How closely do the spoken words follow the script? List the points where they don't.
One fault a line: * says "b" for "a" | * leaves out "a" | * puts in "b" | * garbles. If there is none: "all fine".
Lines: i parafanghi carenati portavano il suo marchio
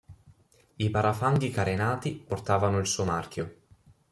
all fine